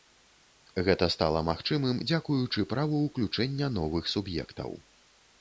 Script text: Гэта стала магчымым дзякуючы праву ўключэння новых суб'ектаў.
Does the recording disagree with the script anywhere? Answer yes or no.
no